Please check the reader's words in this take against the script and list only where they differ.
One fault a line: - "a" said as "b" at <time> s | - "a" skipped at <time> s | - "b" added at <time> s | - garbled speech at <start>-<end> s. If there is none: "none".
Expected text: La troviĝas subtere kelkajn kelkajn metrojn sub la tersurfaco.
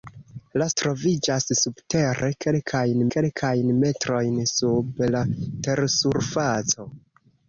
none